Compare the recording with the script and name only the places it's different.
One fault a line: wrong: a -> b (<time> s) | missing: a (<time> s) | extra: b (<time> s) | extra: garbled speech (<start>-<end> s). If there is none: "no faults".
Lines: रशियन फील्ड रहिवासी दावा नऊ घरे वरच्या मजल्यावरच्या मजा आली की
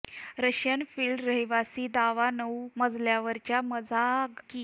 missing: घरे वरच्या (2.7 s)
missing: आली (4.0 s)